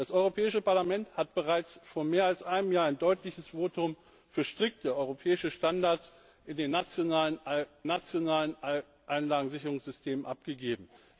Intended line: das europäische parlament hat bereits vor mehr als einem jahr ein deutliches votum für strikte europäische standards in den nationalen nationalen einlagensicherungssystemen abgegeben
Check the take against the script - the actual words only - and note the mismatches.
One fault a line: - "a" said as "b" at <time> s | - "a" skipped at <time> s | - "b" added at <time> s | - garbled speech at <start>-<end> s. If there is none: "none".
none